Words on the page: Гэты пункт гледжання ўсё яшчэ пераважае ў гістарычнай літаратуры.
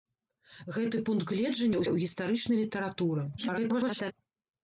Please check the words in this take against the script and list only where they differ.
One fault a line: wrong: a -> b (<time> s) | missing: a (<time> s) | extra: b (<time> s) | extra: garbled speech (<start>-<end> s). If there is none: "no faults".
missing: ўсё яшчэ пераважае (1.8 s)
extra: garbled speech (3.4-4.1 s)